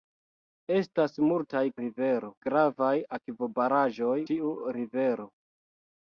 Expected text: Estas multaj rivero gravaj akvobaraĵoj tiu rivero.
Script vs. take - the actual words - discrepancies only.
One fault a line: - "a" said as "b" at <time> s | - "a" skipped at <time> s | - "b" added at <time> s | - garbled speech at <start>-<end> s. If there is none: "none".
none